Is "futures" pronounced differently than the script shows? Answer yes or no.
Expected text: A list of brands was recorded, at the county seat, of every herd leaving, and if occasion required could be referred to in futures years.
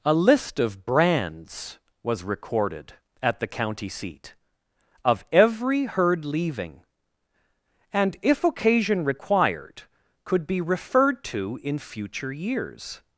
yes